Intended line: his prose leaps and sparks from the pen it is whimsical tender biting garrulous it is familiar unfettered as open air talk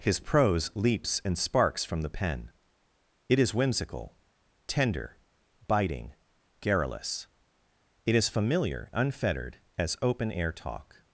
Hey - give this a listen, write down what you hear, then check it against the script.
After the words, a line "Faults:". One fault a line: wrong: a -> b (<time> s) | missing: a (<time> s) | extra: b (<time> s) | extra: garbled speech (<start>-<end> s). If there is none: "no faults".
his prose leaps and sparks from the pen it is whimsical tender biting garrulous it is familiar unfettered as open air talk
Faults:
no faults